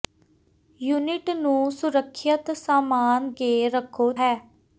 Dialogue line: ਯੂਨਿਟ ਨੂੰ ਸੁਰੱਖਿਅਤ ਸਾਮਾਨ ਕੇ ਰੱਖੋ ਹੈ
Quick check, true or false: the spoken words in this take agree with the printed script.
true